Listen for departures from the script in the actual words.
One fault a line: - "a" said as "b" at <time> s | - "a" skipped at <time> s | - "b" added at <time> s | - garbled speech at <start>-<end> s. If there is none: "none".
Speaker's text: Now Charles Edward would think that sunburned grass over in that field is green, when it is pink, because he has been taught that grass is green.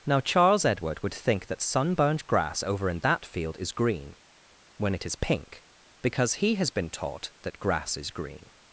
none